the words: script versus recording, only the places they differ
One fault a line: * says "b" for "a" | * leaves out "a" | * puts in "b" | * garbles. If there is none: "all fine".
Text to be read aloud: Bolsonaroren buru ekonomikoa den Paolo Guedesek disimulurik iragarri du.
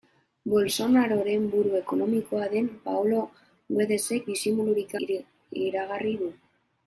all fine